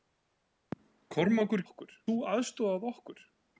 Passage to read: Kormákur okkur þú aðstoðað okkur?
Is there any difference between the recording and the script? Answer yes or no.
no